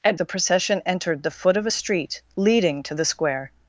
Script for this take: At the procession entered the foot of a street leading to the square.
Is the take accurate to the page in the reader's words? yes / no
yes